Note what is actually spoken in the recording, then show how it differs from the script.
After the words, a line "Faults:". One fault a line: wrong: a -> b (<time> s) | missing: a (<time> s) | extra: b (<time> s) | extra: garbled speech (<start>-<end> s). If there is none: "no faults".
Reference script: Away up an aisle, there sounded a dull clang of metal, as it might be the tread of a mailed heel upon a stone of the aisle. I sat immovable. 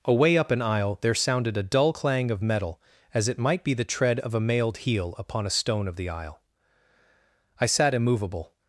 Away up an aisle, there sounded a dull clang of metal, as it might be the tread of a mailed heel upon a stone of the aisle. I sat immovable.
Faults:
no faults